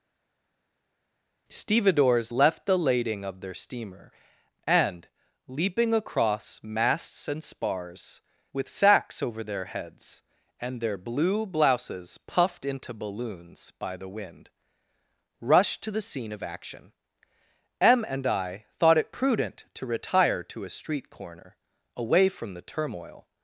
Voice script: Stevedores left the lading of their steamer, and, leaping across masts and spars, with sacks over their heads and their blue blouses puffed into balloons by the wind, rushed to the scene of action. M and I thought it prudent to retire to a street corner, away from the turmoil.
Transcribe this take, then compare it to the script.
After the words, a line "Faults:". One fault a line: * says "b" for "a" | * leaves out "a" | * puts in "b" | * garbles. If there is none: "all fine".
Stevedores left the lading of their steamer, and, leaping across masts and spars, with sacks over their heads and their blue blouses puffed into balloons by the wind, rushed to the scene of action. M and I thought it prudent to retire to a street corner, away from the turmoil.
Faults:
all fine